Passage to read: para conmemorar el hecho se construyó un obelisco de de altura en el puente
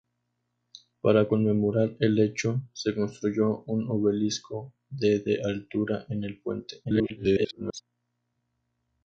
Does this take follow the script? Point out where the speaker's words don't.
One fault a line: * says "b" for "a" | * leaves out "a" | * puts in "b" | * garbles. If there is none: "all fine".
* garbles